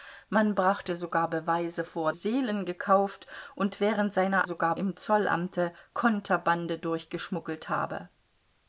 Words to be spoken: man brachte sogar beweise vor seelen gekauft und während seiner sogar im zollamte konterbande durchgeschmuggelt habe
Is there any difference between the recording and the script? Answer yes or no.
no